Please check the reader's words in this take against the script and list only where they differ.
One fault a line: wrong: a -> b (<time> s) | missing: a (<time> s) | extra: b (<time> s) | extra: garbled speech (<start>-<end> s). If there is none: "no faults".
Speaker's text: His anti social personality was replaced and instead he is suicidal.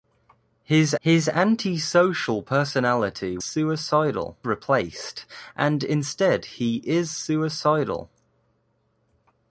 extra: his (1.0 s)
wrong: was -> suicidal (3.4 s)